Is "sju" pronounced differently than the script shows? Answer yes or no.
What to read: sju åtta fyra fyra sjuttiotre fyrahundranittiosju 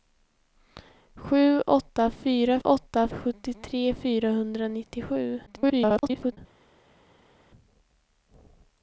no